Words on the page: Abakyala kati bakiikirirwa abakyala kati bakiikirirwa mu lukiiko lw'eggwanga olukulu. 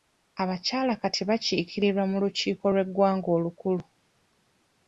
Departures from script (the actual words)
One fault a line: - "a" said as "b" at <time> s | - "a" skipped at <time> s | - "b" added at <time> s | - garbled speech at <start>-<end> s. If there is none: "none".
- "abakyala kati bakiikirirwa" skipped at 2.0 s